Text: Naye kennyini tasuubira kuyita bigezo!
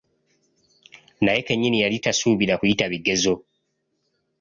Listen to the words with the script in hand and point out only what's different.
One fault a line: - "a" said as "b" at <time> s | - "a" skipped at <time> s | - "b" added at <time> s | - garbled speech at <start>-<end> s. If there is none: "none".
- "yali" added at 1.8 s